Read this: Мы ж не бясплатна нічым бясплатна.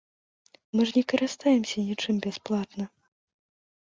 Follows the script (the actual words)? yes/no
no